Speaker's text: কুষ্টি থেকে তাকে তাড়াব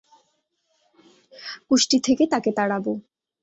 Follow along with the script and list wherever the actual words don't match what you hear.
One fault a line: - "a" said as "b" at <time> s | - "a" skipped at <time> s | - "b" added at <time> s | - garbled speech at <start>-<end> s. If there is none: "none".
none